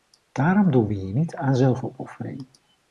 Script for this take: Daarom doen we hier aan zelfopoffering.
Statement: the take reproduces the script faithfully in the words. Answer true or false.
false